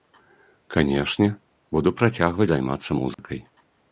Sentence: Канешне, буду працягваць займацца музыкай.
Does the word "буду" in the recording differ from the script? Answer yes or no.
no